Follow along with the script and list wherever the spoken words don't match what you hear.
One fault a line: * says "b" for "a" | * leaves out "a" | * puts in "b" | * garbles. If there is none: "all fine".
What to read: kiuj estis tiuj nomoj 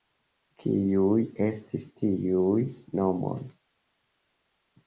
all fine